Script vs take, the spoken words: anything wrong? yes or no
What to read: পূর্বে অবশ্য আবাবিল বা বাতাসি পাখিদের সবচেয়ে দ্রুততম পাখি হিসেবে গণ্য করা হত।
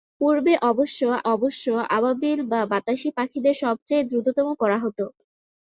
yes